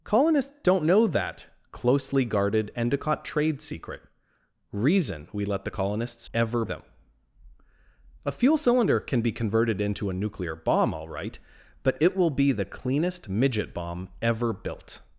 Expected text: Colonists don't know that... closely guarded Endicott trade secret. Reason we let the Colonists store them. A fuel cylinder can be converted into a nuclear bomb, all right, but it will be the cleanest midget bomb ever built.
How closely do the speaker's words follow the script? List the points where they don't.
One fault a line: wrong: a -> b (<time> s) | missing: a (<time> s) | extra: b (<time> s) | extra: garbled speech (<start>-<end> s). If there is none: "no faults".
wrong: store -> ever (6.3 s)